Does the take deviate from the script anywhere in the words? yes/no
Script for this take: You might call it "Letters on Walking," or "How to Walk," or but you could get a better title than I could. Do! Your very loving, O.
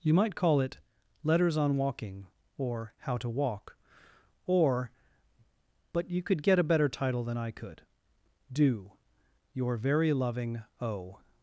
no